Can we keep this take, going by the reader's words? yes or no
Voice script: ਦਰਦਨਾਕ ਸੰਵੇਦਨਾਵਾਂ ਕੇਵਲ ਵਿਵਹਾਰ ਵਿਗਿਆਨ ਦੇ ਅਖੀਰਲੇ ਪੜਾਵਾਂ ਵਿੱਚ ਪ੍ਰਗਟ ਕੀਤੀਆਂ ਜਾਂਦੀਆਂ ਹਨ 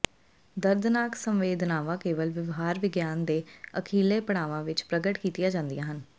yes